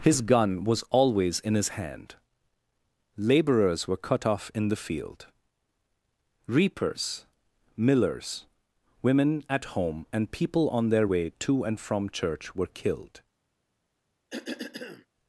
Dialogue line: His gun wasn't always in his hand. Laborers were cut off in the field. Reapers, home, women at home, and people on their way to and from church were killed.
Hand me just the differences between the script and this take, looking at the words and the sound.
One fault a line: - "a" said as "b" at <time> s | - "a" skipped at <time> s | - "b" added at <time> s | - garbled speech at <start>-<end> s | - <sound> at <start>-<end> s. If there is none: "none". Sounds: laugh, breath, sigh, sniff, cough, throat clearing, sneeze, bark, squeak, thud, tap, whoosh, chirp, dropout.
- "wasn't" said as "was" at 0.6 s
- "home" said as "millers" at 7.8 s
- cough at 14.3-15.1 s